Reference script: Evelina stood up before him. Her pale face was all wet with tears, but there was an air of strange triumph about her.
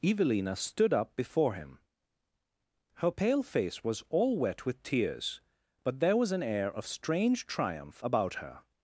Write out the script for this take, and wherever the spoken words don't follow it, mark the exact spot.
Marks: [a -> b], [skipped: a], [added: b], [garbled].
Evelina stood up before him. Her pale face was all wet with tears, but there was an air of strange triumph about her.